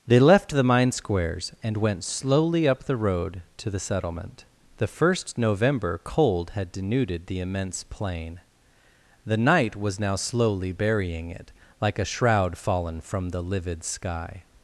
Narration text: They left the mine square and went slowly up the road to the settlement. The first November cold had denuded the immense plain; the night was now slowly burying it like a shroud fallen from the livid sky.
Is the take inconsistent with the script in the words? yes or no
yes